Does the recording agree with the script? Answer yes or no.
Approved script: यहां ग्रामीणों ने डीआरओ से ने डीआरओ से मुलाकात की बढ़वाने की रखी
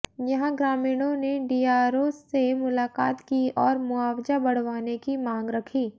no